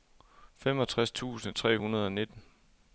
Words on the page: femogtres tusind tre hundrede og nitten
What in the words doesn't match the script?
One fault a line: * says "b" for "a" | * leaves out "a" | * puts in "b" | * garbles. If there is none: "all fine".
all fine